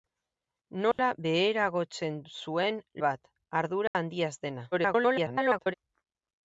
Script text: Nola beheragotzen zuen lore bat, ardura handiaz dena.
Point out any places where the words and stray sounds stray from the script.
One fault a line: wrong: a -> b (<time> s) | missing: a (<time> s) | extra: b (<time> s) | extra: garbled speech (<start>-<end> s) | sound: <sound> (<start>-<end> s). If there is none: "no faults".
sound: dropout (0.9-1.0 s)
missing: lore (2.8 s)
sound: dropout (3.9-3.9 s)
extra: garbled speech (4.7-5.7 s)